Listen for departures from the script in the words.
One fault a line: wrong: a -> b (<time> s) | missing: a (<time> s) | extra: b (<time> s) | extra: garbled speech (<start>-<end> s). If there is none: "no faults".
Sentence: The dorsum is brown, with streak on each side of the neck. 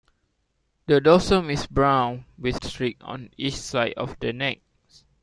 no faults